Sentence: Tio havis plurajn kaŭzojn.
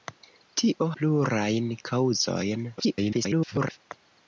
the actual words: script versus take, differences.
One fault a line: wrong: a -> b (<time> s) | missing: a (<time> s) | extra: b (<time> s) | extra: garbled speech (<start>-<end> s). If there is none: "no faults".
missing: havis (0.8 s)
extra: garbled speech (2.8-3.8 s)